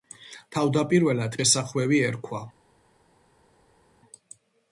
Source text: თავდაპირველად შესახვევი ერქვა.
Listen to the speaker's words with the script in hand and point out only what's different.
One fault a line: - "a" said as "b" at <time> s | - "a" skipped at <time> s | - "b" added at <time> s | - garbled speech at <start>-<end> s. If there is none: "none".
none